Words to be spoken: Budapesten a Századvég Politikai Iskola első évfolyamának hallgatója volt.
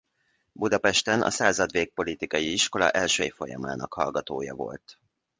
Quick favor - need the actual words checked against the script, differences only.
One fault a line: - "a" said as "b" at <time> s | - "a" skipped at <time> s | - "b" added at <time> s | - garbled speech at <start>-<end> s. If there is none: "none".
none